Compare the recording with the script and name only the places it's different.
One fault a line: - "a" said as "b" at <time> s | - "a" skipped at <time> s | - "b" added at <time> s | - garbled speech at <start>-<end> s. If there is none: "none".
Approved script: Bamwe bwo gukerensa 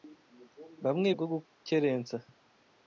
none